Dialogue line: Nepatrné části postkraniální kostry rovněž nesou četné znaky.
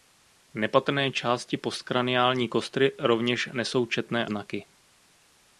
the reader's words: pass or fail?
pass